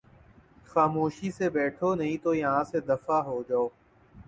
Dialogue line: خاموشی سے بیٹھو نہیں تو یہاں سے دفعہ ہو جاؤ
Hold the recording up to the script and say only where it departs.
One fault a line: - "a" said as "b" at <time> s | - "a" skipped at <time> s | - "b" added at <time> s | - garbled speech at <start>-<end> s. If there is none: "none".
none